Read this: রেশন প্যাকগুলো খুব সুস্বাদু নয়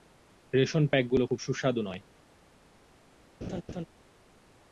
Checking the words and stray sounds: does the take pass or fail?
fail